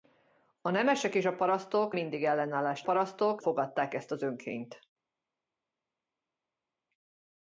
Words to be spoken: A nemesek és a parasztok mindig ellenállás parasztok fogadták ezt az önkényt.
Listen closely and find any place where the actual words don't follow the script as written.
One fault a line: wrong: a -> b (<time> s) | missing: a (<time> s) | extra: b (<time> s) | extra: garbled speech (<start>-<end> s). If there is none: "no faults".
no faults